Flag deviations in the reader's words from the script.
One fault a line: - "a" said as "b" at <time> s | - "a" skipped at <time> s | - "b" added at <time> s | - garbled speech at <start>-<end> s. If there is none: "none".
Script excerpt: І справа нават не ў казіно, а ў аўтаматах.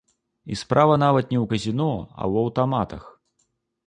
none